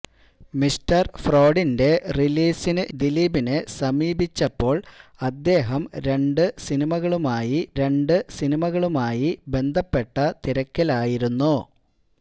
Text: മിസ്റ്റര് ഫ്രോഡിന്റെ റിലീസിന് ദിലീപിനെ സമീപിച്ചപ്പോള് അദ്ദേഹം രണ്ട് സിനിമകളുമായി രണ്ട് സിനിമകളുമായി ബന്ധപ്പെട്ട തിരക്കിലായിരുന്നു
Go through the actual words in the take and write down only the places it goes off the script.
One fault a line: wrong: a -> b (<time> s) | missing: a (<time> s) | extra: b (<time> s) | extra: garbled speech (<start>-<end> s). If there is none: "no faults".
no faults